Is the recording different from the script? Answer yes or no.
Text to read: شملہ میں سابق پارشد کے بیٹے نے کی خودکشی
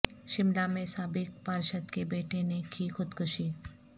no